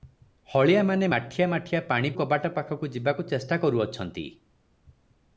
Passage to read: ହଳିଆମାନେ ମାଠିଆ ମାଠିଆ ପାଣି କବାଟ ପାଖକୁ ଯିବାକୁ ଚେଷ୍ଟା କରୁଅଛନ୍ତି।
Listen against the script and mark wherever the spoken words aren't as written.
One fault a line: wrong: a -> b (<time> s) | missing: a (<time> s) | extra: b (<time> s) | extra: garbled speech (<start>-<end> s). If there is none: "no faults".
no faults